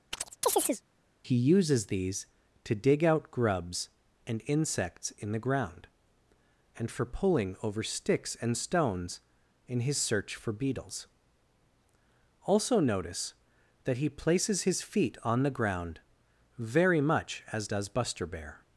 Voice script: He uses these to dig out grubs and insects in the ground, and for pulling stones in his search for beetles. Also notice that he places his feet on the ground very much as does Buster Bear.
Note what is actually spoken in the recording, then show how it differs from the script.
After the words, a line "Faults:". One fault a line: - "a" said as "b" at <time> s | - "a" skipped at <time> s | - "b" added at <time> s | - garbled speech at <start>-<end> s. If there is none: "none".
He uses these to dig out grubs and insects in the ground, and for pulling over sticks and stones in his search for beetles. Also notice that he places his feet on the ground very much as does Buster Bear.
Faults:
- "over sticks and" added at 7.6 s